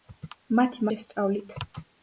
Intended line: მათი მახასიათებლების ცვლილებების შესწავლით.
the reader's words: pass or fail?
fail